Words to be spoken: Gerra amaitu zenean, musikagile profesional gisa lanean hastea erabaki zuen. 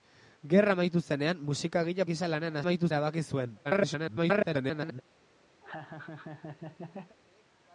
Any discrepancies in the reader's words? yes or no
yes